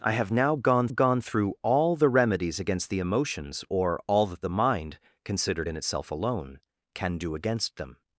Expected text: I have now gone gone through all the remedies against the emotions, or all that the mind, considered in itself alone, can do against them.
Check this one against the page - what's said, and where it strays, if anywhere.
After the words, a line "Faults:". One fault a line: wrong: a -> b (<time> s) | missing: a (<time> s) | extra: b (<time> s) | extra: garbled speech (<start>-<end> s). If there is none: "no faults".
I have now gone gone through all the remedies against the emotions, or all that the mind, considered in itself alone, can do against them.
Faults:
no faults